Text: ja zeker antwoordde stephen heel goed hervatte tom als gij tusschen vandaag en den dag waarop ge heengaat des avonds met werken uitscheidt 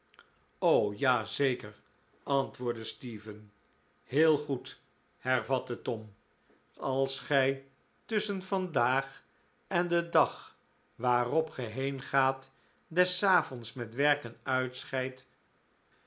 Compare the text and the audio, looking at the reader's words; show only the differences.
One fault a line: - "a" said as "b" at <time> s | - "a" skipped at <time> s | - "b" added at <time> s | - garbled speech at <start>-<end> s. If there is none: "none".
none